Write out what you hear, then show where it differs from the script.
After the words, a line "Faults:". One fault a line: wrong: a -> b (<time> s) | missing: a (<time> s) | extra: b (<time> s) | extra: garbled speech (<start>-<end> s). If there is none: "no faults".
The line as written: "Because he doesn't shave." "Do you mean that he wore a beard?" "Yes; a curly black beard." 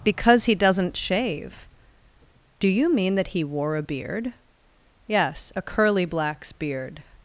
"Because he doesn't shave." "Do you mean that he wore a beard?" "Yes; a curly blacks beard."
Faults:
wrong: black -> blacks (6.1 s)